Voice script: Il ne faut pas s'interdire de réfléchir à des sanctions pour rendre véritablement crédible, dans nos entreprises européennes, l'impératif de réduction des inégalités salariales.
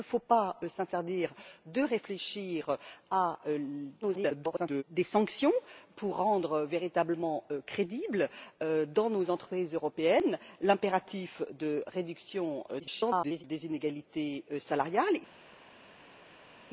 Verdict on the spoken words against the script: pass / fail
fail